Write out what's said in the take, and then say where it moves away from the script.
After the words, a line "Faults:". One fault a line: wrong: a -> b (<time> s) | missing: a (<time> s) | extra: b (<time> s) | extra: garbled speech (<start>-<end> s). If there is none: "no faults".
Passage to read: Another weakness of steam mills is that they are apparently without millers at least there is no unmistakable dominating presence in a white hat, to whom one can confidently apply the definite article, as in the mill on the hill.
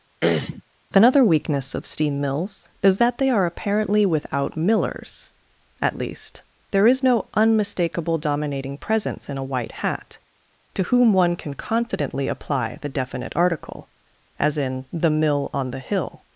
Another weakness of steam mills is that they are apparently without millers at least there is no unmistakable dominating presence in a white hat, to whom one can confidently apply the definite article, as in the mill on the hill.
Faults:
no faults